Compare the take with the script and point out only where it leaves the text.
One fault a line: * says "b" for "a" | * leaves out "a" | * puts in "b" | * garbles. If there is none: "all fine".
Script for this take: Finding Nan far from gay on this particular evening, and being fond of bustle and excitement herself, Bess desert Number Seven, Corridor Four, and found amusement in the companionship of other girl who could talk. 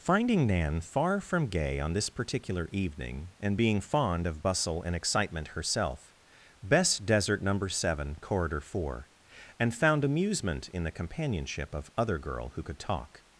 all fine